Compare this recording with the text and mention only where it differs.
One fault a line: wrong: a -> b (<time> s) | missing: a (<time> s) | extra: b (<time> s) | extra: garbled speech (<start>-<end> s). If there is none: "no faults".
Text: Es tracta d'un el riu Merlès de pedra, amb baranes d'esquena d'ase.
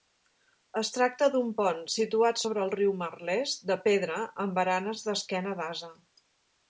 extra: pont situat sobre (1.6 s)